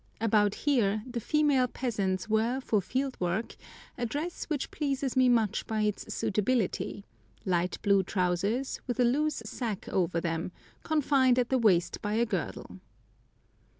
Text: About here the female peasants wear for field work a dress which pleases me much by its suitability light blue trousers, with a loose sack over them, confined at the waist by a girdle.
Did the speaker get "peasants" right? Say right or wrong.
right